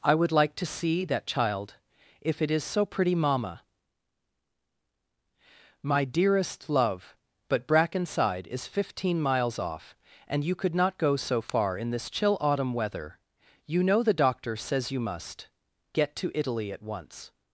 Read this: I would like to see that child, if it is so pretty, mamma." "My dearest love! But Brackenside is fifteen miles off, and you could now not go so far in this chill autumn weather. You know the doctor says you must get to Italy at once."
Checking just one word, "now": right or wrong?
wrong